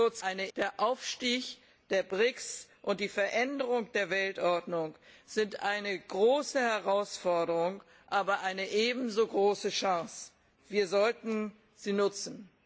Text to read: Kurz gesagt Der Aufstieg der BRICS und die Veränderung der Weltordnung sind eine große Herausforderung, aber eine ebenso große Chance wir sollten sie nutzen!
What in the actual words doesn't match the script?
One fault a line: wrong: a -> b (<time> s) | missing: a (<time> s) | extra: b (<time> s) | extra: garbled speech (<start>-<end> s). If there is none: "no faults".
wrong: gesagt -> eine (0.2 s)